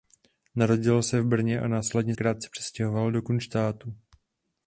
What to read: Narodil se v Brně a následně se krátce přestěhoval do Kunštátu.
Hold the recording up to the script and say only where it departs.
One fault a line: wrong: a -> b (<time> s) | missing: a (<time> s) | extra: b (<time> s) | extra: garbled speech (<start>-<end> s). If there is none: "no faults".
missing: se (2.1 s)